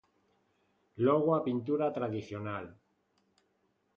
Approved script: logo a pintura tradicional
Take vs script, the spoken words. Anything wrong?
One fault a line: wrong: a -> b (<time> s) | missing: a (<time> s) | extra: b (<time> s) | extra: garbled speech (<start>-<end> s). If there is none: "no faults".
no faults